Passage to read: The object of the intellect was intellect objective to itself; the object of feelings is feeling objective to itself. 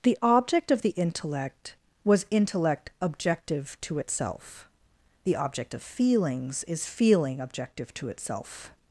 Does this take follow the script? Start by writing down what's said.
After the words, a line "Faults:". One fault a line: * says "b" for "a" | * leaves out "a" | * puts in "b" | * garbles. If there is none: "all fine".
The object of the intellect was intellect objective to itself; the object of feelings is feeling objective to itself.
Faults:
all fine